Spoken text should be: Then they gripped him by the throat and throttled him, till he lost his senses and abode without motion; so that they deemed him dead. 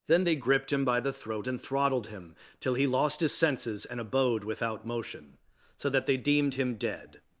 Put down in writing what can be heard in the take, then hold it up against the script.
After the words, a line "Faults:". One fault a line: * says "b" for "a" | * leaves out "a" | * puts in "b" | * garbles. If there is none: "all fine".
Then they gripped him by the throat and throttled him, till he lost his senses and abode without motion; so that they deemed him dead.
Faults:
all fine